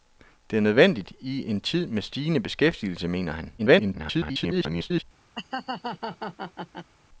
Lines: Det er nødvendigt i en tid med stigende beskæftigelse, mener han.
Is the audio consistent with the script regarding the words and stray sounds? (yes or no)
no